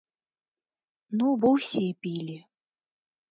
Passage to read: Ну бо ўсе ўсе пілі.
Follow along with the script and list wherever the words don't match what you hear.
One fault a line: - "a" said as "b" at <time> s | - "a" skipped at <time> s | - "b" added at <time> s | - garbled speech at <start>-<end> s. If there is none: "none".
- "ўсе" skipped at 1.8 s